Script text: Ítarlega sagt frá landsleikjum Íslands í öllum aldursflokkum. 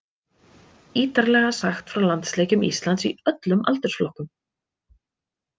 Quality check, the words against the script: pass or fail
pass